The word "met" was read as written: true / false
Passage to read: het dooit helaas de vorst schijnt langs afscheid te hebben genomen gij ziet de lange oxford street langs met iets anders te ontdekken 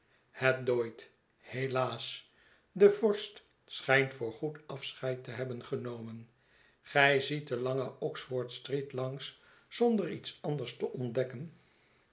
false